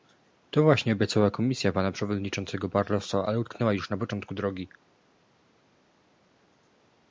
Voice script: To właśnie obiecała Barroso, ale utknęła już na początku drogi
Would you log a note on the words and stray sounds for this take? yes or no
yes